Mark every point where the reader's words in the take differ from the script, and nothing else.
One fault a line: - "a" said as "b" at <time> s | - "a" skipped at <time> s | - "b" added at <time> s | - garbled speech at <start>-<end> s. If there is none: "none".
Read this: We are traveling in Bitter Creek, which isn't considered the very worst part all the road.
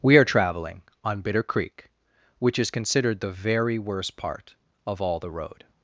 - "in" said as "on" at 1.0 s
- "isn't" said as "is" at 2.6 s
- "of" added at 4.9 s